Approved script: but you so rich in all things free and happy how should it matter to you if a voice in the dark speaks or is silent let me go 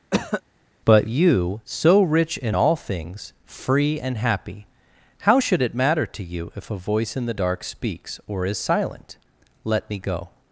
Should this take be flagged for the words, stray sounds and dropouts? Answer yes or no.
yes